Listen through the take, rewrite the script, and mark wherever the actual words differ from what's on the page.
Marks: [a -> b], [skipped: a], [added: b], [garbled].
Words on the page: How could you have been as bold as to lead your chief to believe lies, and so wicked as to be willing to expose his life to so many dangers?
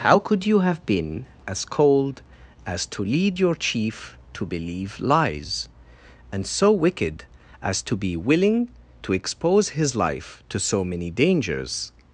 How could you have been as [bold -> cold] as to lead your chief to believe lies, and so wicked as to be willing to expose his life to so many dangers?